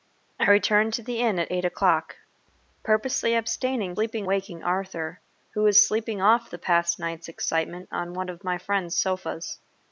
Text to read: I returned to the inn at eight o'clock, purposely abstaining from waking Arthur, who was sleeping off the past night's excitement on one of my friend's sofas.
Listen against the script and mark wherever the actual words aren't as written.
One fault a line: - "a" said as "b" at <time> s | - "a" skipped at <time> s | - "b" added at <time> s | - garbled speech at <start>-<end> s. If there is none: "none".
- "from" said as "sleeping" at 3.9 s